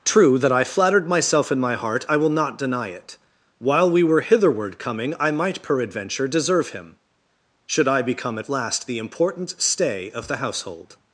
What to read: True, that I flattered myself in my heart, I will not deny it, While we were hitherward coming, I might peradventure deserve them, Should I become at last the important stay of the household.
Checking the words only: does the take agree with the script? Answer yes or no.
no